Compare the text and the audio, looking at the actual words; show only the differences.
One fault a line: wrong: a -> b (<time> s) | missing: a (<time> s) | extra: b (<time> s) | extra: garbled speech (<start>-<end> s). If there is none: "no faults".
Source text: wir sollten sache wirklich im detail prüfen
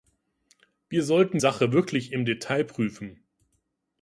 no faults